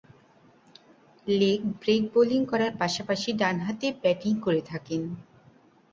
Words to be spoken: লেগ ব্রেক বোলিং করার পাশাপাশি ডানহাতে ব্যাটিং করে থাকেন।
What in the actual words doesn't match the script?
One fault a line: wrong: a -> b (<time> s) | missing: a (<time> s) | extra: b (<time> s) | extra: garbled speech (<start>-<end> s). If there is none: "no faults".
no faults